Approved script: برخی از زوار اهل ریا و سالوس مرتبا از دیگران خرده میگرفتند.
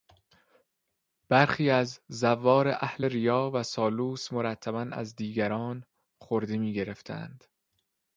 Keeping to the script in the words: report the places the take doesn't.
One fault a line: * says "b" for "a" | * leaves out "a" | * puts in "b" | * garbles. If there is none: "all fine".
all fine